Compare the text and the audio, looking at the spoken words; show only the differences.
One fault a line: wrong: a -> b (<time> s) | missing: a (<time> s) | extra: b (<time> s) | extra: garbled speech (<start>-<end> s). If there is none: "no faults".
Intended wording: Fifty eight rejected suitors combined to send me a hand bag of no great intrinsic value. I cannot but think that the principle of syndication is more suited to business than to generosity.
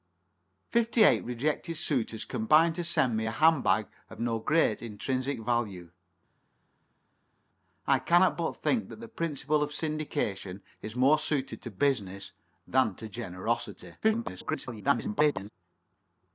extra: garbled speech (14.0-15.5 s)